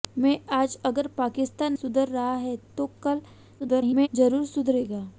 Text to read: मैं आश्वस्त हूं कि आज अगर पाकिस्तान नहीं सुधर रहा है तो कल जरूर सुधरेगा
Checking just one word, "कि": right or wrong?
wrong